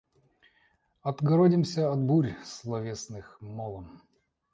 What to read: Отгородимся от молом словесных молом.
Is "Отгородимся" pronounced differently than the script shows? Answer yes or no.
no